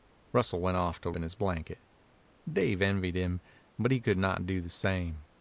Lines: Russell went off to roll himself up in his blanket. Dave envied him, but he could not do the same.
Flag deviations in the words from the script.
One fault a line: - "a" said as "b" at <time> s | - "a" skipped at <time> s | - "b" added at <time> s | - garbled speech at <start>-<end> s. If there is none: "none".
- "roll himself up" skipped at 1.1 s